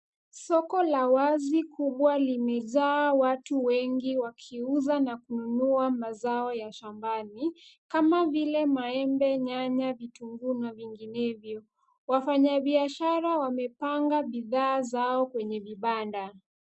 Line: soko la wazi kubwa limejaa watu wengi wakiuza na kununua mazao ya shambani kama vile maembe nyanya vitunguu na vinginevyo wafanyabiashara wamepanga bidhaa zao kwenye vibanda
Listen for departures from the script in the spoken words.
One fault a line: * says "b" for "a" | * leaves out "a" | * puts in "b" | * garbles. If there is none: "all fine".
all fine